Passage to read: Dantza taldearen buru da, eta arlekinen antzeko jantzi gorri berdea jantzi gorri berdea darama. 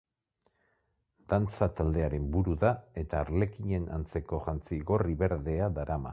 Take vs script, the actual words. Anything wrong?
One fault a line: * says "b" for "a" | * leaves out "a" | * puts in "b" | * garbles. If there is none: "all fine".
* leaves out "jantzi gorri berdea"